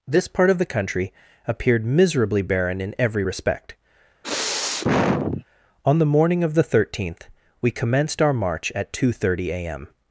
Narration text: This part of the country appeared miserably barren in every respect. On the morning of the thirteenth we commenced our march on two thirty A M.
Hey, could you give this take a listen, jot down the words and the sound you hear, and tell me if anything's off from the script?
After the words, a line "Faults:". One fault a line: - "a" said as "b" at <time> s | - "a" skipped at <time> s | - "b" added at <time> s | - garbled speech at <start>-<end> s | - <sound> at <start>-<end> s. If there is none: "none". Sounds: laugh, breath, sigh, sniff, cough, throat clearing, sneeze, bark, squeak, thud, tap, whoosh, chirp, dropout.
This part of the country appeared miserably barren in every respect. On the morning of the thirteenth we commenced our march at two thirty A M.
Faults:
- sniff at 4.2-5.4 s
- "on" said as "at" at 8.8 s